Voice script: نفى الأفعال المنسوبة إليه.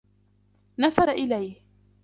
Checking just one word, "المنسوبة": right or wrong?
wrong